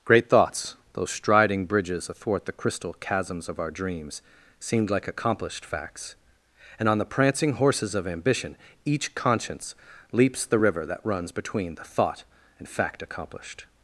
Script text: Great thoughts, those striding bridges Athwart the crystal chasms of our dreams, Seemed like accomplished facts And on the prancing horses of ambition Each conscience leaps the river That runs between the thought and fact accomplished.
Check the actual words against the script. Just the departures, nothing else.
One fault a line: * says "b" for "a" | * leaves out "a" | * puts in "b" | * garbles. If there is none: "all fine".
all fine